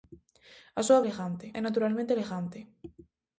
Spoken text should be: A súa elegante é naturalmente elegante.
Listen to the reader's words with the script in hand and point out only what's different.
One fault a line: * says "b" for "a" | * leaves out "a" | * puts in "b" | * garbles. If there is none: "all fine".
all fine